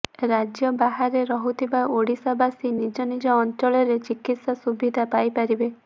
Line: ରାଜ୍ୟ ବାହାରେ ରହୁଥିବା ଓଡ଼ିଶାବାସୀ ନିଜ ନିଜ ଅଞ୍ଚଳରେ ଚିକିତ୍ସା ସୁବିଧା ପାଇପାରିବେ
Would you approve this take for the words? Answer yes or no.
yes